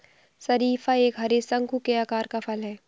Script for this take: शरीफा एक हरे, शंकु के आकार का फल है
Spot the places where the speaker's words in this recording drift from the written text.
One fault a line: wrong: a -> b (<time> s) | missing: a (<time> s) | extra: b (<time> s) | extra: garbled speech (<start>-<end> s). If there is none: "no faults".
no faults